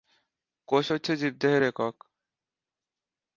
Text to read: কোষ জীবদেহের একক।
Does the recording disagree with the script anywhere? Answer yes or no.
yes